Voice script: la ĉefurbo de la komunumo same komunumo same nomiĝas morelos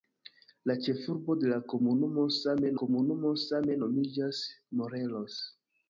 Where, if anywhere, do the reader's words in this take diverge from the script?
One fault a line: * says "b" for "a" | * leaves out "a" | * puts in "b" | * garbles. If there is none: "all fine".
all fine